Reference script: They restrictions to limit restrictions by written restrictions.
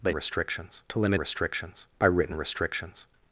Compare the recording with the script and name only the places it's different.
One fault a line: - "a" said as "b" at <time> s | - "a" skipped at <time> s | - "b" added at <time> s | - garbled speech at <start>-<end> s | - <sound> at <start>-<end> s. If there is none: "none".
none